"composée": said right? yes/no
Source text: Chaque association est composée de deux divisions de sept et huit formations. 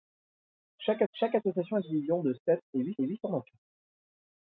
no